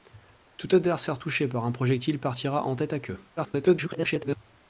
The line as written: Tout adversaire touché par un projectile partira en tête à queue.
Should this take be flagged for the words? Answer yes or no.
yes